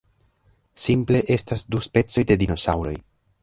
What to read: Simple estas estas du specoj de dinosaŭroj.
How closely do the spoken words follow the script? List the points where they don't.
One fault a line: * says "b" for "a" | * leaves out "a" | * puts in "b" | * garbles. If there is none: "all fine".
* leaves out "estas"